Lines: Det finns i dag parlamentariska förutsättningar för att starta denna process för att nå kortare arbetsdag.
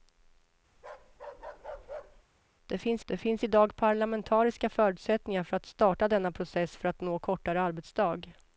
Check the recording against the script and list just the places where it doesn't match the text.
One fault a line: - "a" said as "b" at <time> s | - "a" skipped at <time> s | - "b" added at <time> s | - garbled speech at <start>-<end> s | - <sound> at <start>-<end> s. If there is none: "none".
- bark at 0.8-2.2 s
- "det finns" added at 3.1 s